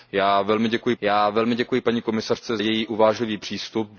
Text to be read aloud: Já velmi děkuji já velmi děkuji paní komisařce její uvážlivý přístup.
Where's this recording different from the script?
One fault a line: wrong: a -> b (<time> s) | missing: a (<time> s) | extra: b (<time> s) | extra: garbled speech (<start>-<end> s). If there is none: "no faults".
no faults